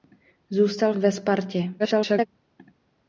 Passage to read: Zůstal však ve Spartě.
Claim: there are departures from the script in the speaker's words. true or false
true